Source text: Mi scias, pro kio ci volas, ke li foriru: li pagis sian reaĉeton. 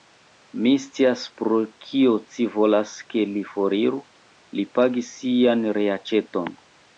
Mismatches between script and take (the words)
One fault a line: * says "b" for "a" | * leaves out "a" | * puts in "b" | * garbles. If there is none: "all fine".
all fine